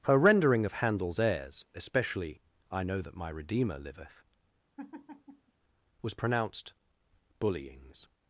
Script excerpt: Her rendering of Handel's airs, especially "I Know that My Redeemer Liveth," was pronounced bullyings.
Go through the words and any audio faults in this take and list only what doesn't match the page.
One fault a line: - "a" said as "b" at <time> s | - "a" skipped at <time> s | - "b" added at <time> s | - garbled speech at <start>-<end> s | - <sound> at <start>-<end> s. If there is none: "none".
- laugh at 4.8-5.5 s